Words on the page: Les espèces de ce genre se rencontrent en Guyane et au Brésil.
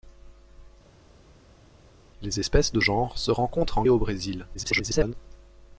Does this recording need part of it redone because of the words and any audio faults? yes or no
yes